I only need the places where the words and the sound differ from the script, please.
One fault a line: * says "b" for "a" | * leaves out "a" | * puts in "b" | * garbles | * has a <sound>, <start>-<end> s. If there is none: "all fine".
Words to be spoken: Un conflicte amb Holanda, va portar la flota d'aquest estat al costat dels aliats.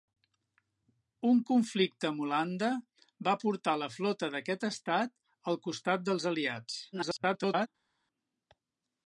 * garbles